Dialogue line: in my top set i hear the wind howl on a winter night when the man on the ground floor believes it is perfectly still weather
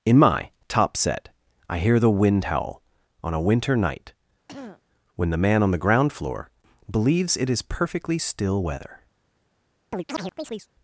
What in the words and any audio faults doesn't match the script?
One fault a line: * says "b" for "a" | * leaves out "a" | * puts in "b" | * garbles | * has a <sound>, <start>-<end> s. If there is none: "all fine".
* has a throat clearing, 4.5-4.8 s
* has a chirp, 9.9-10.7 s